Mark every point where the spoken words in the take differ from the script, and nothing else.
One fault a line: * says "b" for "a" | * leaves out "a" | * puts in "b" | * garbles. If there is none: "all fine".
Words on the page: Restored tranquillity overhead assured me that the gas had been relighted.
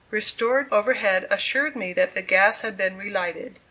* leaves out "tranquillity"